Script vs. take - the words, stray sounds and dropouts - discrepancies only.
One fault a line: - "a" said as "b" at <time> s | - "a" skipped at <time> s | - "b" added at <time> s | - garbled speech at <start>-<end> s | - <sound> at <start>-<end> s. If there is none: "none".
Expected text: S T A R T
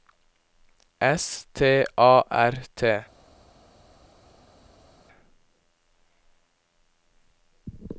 none